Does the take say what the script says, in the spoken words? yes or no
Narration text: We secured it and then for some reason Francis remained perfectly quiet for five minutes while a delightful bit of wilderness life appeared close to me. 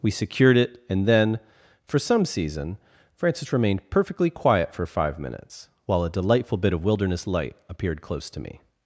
no